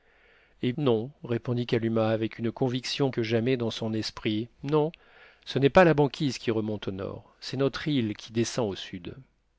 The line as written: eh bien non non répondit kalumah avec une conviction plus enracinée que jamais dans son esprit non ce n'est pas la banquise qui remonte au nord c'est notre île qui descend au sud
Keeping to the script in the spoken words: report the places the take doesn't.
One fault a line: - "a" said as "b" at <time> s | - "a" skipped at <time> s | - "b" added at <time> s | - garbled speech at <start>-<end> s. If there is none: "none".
- "bien" skipped at 0.7 s
- "non" skipped at 1.1 s
- "plus enracinée" skipped at 3.1 s